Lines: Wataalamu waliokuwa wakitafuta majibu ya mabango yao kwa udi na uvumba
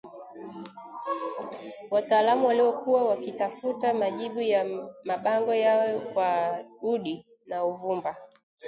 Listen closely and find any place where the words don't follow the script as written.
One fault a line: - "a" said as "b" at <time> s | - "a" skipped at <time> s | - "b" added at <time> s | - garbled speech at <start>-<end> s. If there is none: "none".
none